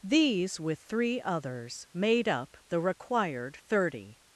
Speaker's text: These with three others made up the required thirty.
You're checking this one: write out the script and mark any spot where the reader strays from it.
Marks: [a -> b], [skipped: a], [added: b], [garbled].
These with three others made up the required thirty.